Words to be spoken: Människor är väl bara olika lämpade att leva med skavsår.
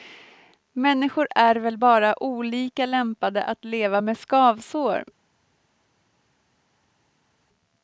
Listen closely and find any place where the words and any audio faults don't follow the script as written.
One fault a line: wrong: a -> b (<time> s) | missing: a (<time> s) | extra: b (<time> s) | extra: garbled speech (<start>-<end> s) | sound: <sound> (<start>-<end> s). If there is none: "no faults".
no faults